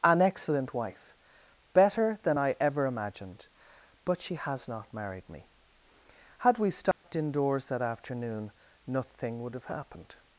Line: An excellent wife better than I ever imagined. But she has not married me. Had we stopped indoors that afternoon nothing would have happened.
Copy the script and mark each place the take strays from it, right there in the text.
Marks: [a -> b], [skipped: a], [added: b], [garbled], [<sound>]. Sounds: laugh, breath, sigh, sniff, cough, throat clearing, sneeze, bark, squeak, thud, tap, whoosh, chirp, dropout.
An excellent wife better than I ever imagined. But she has not married me. Had we stopped [dropout] indoors that afternoon nothing would have happened.